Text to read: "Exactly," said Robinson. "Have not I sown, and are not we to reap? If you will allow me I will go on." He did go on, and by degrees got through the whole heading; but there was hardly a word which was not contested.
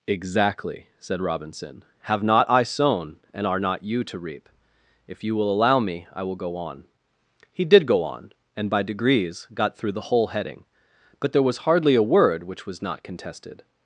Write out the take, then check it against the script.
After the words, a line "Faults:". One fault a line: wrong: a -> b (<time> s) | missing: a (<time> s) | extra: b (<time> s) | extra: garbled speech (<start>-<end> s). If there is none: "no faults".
"Exactly," said Robinson. "Have not I sown, and are not you to reap? If you will allow me I will go on." He did go on, and by degrees got through the whole heading; but there was hardly a word which was not contested.
Faults:
wrong: we -> you (3.8 s)